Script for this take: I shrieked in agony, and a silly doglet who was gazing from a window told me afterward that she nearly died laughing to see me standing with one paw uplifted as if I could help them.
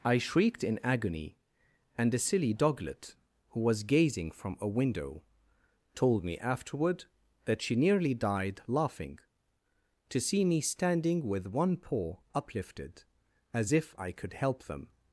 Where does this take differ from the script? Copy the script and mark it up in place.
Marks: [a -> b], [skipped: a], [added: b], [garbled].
I shrieked in agony, and a silly doglet who was gazing from a window told me afterward that she nearly died laughing to see me standing with one paw uplifted as if I could help them.